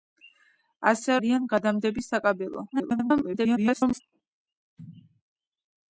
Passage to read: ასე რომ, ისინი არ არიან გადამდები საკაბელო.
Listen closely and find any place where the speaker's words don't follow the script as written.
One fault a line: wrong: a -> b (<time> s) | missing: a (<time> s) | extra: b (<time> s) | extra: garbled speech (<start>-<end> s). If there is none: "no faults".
missing: რომ ისინი არ (1.2 s)
extra: garbled speech (2.7-4.0 s)